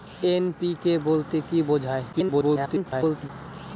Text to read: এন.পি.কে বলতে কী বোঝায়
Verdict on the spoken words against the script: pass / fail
fail